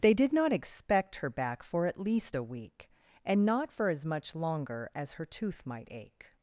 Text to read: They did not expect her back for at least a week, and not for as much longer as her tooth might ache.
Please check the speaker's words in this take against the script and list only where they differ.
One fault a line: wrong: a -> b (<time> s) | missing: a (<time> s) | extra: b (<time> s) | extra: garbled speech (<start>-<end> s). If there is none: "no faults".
no faults